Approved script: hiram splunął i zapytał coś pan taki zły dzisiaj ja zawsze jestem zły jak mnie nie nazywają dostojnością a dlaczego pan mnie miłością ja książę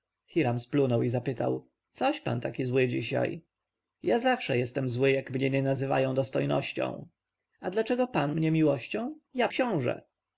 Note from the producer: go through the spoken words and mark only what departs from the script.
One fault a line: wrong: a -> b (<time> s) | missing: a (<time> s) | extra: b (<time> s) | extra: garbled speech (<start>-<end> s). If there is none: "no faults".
no faults